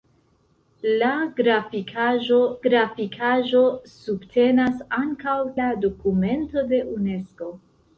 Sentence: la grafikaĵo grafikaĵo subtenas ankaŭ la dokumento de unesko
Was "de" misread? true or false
false